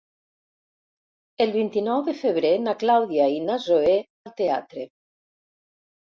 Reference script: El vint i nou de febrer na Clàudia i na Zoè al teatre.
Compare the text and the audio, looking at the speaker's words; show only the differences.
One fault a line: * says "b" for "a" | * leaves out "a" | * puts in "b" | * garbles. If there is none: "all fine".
all fine